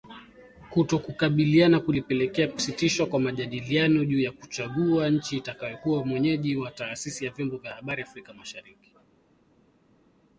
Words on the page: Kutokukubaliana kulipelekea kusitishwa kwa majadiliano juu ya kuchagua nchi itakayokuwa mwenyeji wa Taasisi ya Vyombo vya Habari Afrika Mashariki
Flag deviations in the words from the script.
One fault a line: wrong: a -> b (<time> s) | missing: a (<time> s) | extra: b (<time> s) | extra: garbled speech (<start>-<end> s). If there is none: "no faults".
no faults